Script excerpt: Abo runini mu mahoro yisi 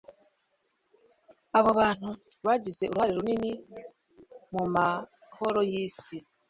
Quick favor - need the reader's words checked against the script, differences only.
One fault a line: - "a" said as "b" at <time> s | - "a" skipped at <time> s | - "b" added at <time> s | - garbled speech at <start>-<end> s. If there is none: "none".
- "bantu bagize uruhare" added at 1.8 s